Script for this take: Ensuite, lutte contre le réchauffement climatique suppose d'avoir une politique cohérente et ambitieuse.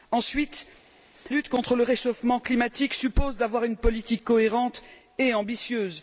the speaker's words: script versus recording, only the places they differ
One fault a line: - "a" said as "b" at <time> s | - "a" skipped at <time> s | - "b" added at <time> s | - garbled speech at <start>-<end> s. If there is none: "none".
none